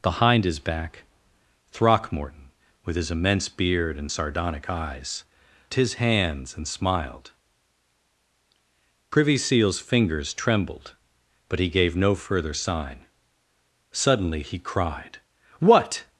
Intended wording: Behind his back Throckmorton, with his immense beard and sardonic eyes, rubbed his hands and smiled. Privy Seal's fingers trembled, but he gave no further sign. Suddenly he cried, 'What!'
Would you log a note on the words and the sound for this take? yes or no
yes